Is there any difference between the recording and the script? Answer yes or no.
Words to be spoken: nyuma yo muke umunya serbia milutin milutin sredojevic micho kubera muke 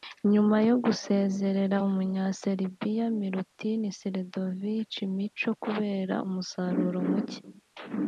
yes